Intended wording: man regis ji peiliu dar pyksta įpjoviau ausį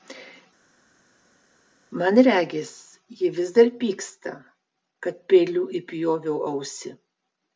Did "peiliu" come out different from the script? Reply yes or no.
yes